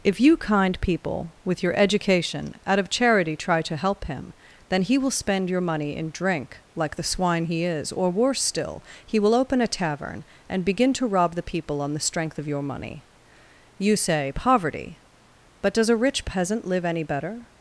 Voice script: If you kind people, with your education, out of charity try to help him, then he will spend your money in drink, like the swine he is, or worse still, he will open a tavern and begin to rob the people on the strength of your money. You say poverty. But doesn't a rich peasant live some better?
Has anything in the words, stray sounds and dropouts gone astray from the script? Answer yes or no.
yes